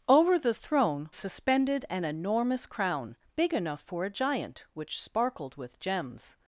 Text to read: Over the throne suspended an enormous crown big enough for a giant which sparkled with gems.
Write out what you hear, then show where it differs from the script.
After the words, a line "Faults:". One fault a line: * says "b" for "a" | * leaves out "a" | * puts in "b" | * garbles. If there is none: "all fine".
Over the throne suspended an enormous crown big enough for a giant which sparkled with gems.
Faults:
all fine